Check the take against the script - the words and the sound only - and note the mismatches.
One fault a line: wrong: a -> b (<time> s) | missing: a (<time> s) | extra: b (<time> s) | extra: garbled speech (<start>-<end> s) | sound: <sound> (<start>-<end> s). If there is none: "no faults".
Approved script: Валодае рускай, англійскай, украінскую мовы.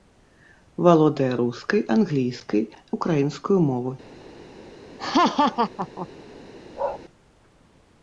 sound: laugh (5.0-6.1 s)
sound: bark (6.7-7.0 s)